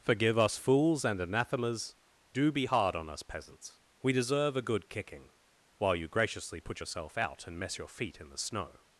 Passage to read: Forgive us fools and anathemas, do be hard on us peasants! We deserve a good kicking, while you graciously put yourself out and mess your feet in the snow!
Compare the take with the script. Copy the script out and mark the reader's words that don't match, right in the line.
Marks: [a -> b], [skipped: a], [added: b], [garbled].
Forgive us fools and anathemas, do be hard on us peasants! We deserve a good kicking, while you graciously put yourself out and mess your feet in the snow!